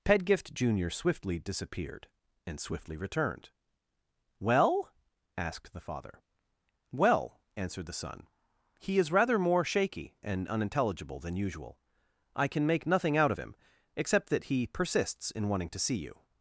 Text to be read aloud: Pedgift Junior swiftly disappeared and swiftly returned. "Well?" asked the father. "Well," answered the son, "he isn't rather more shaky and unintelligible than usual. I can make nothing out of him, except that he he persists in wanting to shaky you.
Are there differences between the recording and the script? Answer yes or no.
yes